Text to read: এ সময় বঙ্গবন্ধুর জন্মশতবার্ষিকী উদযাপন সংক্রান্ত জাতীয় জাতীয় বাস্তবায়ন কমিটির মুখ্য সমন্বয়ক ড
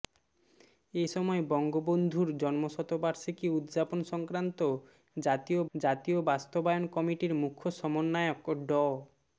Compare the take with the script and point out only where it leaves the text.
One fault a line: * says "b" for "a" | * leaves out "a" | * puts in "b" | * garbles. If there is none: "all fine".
all fine